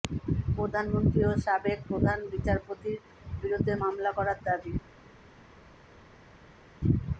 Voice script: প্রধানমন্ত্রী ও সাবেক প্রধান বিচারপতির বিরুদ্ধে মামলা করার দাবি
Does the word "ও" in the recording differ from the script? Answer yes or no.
no